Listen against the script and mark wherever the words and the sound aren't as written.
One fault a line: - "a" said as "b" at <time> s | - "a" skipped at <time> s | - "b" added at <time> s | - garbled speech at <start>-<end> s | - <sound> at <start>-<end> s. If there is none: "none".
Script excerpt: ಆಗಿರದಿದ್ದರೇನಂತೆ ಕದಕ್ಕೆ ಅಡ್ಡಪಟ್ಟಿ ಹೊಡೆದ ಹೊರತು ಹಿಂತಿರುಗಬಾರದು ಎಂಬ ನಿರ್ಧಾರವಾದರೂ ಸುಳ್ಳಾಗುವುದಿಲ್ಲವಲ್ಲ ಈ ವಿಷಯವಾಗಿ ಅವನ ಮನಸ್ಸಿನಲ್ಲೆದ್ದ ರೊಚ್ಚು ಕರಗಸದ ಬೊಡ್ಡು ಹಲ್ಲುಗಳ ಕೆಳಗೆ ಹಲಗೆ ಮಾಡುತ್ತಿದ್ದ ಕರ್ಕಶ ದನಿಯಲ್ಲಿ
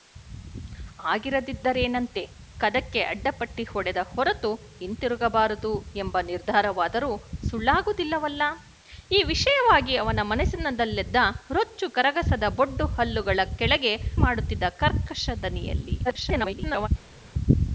- "ಹಲಗೆ" skipped at 13.9 s
- garbled speech at 16.0-16.9 s